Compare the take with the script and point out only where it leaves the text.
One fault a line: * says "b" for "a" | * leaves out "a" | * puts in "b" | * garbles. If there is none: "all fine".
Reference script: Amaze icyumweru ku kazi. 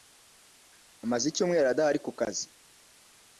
* puts in "adahari"